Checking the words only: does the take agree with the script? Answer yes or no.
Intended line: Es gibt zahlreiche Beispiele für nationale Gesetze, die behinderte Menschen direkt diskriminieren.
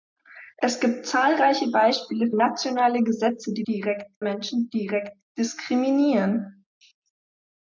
no